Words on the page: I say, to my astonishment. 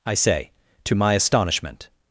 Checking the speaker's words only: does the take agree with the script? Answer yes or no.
yes